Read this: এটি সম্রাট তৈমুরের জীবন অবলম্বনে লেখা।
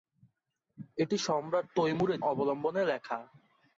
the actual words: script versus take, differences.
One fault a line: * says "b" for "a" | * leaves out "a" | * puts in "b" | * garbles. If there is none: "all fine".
* leaves out "জীবন"